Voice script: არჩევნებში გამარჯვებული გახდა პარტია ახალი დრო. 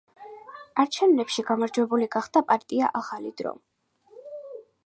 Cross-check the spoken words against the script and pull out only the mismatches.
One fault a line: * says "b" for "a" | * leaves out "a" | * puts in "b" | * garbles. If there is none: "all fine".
all fine